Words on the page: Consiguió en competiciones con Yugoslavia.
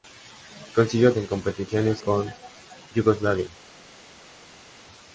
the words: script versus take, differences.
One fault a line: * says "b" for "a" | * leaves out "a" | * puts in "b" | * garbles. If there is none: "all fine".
all fine